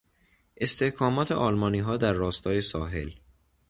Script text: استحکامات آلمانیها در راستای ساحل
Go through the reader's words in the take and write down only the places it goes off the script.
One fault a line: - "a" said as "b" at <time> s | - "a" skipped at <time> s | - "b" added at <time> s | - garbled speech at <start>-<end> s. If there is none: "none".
none